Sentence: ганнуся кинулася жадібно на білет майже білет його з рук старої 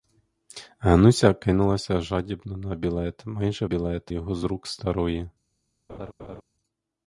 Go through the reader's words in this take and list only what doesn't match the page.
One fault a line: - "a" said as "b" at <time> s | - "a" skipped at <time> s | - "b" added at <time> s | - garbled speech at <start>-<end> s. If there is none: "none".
none